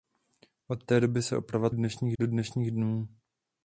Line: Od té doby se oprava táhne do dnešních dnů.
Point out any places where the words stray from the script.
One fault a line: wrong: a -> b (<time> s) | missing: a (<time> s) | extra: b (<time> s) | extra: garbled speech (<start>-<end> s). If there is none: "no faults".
wrong: táhne -> dnešních (1.7 s)